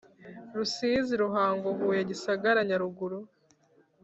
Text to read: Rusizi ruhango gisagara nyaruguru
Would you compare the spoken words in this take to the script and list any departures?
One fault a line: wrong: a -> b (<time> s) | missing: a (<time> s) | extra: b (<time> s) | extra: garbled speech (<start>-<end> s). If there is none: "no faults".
extra: huye (1.8 s)